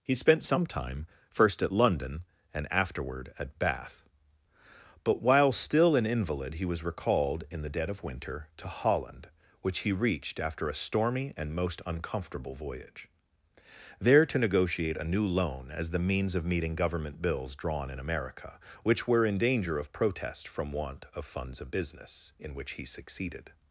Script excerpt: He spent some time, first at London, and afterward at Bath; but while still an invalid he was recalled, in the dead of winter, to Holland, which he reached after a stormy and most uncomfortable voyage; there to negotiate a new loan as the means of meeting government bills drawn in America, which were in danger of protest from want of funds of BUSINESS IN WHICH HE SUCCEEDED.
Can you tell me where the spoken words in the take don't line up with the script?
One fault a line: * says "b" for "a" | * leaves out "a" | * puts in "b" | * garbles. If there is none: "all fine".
all fine